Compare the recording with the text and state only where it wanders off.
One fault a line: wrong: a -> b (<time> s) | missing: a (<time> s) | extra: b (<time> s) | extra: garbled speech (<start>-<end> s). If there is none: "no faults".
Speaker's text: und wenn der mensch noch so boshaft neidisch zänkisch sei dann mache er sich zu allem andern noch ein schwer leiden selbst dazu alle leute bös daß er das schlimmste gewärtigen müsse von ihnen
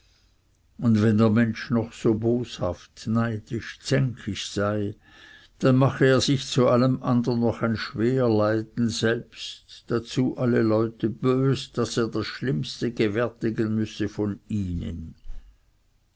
no faults